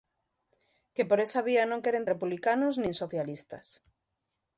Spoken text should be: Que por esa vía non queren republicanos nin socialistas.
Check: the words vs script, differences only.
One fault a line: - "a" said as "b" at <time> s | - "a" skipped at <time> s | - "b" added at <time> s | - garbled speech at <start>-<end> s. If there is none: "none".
none